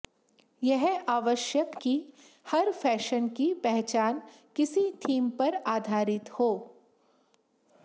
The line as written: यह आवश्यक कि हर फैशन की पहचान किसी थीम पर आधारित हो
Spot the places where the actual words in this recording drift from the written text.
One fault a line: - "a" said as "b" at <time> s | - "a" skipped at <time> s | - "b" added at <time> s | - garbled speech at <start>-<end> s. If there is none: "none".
none